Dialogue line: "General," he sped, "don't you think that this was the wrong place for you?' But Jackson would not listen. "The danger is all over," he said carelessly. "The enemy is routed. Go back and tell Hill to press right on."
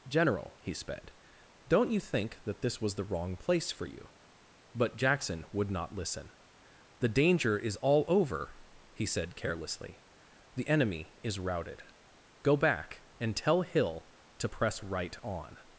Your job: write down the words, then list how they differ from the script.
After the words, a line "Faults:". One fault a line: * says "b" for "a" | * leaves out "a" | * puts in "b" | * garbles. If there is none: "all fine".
"General," he sped, "don't you think that this was the wrong place for you?' But Jackson would not listen. "The danger is all over," he said carelessly. "The enemy is routed. Go back and tell Hill to press right on."
Faults:
all fine